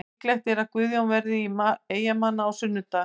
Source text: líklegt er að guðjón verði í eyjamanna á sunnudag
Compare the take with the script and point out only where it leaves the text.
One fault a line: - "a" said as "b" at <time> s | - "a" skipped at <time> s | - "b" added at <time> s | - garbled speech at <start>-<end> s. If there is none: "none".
none